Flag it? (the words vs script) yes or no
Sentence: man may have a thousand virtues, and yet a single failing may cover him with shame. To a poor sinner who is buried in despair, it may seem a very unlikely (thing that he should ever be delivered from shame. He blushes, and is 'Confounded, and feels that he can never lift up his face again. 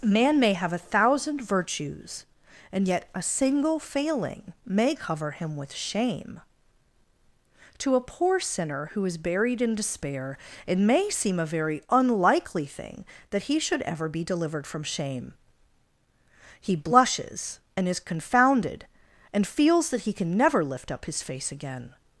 no